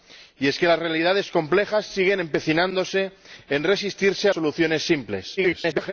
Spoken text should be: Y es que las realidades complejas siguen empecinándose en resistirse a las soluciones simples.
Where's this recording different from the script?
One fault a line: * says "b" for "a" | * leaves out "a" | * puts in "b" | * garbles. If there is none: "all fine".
* leaves out "las"
* garbles